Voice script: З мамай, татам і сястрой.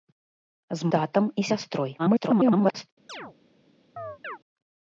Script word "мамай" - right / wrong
wrong